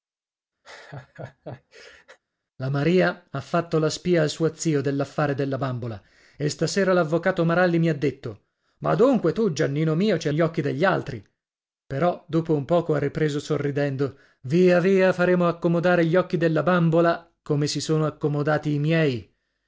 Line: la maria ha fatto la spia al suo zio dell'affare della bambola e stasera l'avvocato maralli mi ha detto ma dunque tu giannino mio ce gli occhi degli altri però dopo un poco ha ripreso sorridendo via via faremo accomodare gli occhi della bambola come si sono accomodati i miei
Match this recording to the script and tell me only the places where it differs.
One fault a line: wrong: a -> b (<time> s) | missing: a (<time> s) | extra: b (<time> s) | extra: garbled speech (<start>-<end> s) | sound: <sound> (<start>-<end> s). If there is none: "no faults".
sound: laugh (0.6-2.2 s)